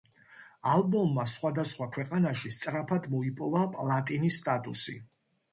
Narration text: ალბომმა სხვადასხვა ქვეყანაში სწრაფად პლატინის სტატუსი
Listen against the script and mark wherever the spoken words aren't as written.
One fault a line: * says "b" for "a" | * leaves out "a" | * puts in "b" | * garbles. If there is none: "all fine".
* puts in "მოიპოვა"